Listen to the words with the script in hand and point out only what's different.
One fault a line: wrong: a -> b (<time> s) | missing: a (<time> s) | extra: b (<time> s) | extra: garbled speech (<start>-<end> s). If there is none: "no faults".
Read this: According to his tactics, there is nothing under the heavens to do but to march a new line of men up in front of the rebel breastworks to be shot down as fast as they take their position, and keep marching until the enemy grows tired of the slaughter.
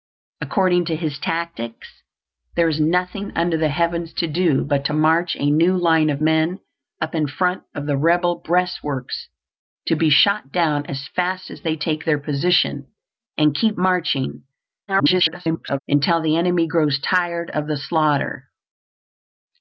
extra: garbled speech (14.9-15.8 s)